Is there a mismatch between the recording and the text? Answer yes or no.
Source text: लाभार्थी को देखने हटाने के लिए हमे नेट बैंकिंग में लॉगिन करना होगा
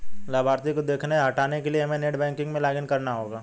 yes